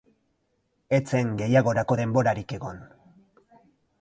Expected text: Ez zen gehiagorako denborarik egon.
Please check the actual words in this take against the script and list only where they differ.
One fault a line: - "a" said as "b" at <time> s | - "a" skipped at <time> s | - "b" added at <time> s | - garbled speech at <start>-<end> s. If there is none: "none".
none